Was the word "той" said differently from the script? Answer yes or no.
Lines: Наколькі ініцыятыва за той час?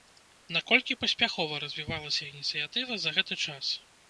yes